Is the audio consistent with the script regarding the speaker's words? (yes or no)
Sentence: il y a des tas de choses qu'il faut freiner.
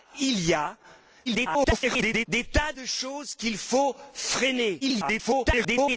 no